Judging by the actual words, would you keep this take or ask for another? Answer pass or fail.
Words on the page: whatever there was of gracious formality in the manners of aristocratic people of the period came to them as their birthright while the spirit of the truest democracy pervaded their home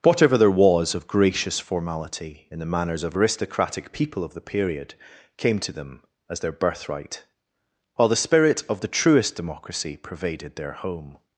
pass